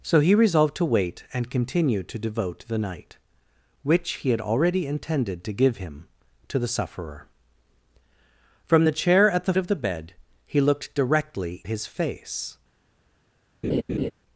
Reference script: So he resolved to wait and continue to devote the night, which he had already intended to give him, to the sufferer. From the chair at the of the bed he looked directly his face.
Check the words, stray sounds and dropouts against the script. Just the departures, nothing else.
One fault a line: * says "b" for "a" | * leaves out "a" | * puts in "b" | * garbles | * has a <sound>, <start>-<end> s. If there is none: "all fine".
* has a laugh, 13.6-14.1 s